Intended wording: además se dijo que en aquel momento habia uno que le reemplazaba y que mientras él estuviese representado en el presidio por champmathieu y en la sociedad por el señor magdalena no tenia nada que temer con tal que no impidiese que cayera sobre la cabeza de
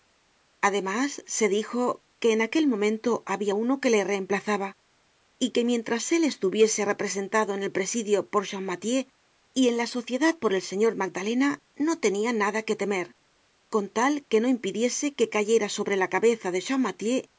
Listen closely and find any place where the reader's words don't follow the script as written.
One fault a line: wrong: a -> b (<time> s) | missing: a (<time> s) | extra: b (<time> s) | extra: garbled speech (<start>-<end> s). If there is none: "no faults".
no faults